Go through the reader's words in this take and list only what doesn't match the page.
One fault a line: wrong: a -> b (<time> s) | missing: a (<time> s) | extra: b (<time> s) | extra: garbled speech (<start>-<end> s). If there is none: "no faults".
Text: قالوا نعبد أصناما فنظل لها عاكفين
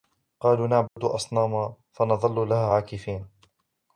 no faults